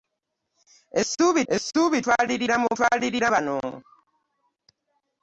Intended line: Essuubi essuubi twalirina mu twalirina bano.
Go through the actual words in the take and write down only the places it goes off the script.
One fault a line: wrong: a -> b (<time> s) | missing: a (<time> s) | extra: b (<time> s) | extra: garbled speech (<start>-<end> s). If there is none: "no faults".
no faults